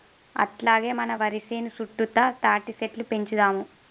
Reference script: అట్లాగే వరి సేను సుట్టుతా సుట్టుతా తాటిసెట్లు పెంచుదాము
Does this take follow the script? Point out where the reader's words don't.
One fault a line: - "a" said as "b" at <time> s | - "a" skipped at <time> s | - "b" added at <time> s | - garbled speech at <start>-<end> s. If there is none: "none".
- "మన" added at 0.9 s
- "సుట్టుతా" skipped at 2.2 s